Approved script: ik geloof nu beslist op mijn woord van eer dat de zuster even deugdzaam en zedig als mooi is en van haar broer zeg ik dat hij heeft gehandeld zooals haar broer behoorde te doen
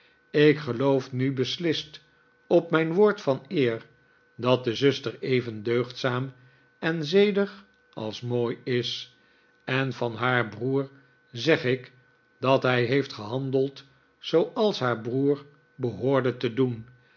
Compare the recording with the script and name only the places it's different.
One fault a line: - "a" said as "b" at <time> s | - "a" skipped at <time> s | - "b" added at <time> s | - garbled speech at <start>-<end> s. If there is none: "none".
none